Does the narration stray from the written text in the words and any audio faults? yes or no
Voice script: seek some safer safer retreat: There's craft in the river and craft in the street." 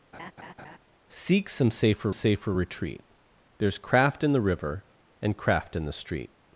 yes